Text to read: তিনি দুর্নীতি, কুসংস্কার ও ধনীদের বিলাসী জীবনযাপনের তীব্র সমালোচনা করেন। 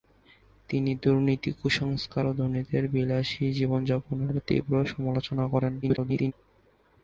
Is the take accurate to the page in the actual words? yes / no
no